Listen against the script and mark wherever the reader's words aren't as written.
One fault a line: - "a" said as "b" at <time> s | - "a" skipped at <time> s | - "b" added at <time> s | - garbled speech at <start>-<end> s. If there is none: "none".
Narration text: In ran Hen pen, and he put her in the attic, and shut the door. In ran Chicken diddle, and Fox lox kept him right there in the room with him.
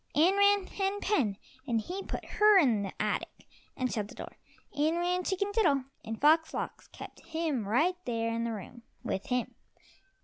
none